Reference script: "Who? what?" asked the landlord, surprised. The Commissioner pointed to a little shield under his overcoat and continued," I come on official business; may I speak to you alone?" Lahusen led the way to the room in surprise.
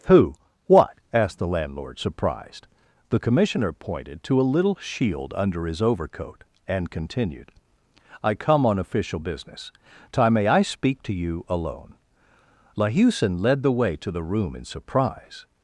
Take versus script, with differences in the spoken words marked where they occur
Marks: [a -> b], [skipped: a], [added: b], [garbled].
"Who? what?" asked the landlord, surprised. The Commissioner pointed to a little shield under his overcoat and continued," I come on official business; [added: time] may I speak to you alone?" Lahusen led the way to the room in surprise.